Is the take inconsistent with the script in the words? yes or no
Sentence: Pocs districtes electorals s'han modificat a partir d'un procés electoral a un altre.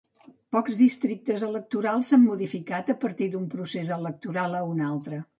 no